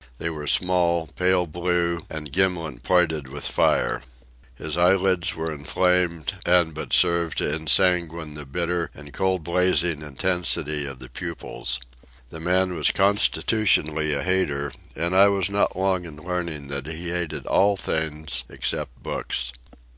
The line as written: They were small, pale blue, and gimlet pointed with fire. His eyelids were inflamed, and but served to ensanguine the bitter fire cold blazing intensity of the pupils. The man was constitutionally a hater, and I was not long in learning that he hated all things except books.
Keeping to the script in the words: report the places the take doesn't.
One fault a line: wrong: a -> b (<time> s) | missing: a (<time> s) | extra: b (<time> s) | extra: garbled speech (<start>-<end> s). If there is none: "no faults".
wrong: fire -> and (9.0 s)